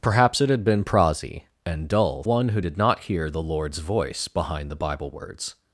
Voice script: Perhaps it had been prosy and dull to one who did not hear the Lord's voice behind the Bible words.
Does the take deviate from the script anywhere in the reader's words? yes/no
yes